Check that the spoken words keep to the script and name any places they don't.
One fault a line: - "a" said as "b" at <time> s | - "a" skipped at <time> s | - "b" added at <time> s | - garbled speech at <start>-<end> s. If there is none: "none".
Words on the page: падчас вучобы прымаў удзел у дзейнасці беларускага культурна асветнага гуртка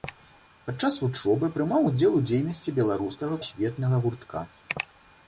- "культурна" skipped at 3.3 s